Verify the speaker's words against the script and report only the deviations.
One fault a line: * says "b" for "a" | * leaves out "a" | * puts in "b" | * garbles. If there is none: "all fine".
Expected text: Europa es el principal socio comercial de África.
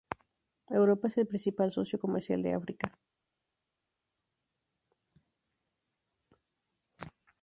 all fine